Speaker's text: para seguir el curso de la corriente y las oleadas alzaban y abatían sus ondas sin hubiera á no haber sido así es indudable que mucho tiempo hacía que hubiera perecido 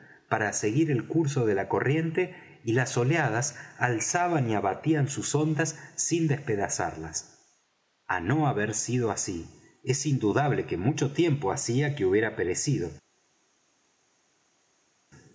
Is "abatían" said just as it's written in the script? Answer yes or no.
yes